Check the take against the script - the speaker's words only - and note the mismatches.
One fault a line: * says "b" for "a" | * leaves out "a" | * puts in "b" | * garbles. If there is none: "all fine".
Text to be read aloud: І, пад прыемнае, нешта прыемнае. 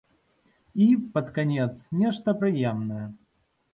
* says "канец" for "прыемнае"